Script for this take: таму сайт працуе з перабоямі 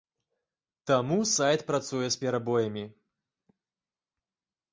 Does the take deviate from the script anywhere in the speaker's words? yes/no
no